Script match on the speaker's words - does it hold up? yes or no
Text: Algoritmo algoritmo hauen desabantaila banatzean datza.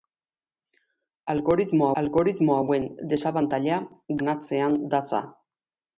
yes